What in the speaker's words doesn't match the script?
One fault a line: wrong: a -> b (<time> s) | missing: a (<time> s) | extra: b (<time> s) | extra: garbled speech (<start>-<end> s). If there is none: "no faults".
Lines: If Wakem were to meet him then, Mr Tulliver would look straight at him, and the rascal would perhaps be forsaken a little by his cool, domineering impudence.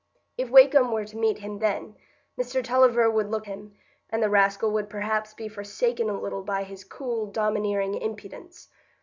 missing: straight at (3.5 s)